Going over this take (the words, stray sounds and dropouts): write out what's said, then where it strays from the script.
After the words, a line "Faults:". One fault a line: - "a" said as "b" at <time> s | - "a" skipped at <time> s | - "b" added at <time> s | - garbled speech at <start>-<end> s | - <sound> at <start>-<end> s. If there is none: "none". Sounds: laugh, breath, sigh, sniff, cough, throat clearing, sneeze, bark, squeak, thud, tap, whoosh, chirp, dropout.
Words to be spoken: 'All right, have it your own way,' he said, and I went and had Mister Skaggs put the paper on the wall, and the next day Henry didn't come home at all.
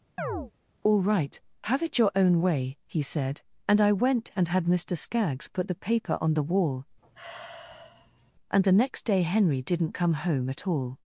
'All right, have it your own way,' he said, and I went and had Mister Skaggs put the paper on the wall, and the next day Henry didn't come home at all.
Faults:
- chirp at 0.2-0.5 s
- sigh at 7.0-8.3 s